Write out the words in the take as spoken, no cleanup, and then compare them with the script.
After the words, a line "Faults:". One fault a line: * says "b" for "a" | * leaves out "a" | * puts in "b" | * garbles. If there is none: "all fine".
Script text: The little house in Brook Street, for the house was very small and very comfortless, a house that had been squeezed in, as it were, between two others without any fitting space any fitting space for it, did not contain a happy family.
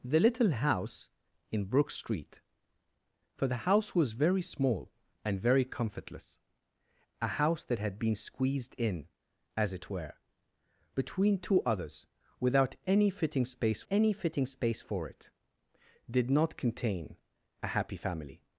The little house in Brook Street, for the house was very small and very comfortless, a house that had been squeezed in, as it were, between two others without any fitting space any fitting space for it, did not contain a happy family.
Faults:
all fine